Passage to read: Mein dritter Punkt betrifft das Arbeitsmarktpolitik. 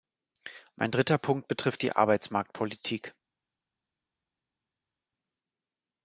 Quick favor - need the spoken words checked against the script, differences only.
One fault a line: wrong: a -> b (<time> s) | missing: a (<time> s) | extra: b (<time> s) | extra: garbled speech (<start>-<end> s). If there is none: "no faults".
wrong: das -> die (1.8 s)